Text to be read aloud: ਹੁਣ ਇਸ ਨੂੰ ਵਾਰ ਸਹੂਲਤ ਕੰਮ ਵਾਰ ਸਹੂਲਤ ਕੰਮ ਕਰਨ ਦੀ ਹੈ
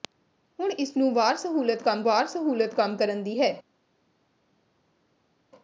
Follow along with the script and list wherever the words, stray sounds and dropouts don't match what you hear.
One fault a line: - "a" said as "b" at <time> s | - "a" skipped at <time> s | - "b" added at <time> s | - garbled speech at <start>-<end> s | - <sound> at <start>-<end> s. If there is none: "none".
none